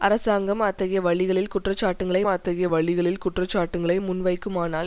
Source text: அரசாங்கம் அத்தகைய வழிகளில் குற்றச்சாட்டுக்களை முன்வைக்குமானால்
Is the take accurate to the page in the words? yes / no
no